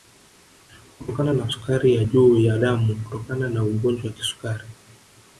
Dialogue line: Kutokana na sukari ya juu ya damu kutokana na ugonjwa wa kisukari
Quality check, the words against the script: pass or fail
pass